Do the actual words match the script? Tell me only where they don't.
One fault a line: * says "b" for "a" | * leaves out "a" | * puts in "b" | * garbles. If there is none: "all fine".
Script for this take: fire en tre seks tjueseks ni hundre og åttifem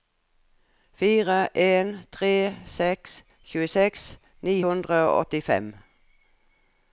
all fine